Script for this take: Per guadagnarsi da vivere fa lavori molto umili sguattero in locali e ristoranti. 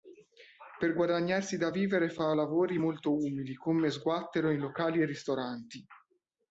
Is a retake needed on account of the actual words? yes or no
yes